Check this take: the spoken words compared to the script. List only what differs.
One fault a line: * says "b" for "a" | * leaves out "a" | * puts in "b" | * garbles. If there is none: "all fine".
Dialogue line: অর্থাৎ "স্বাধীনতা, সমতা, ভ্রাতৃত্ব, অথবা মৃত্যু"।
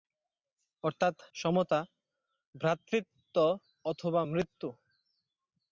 * leaves out "স্বাধীনতা"